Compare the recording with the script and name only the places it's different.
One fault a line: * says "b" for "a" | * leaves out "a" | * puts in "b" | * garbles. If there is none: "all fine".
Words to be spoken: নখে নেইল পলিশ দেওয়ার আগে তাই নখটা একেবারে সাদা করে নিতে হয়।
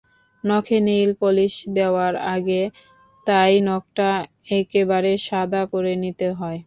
all fine